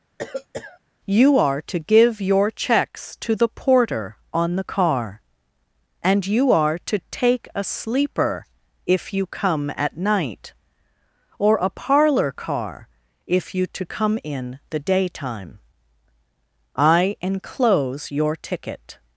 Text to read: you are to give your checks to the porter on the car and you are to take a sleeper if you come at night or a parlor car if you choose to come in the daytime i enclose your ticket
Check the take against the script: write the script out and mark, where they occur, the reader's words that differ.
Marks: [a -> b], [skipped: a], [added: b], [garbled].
you are to give your checks to the porter on the car and you are to take a sleeper if you come at night or a parlor car if you [skipped: choose] to come in the daytime i enclose your ticket